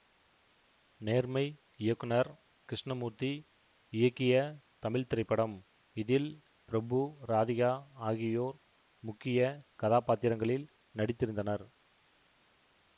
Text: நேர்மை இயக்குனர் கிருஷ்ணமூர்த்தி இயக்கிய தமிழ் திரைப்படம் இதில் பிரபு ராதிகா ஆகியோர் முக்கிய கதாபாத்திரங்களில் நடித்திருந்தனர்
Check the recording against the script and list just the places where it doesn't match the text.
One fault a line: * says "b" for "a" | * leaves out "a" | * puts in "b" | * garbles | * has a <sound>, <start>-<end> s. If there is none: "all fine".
all fine